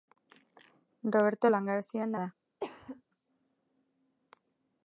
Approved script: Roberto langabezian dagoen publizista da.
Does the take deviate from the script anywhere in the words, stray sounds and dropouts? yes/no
yes